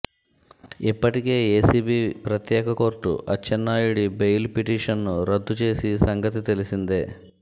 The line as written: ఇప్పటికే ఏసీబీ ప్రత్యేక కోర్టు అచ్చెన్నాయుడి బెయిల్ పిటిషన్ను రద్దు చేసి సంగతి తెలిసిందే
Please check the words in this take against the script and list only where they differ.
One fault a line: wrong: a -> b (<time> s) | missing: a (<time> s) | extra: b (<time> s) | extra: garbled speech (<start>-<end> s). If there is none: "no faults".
no faults